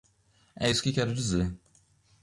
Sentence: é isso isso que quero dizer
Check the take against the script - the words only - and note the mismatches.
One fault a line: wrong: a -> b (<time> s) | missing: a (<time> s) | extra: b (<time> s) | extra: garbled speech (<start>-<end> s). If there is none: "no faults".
missing: isso (0.8 s)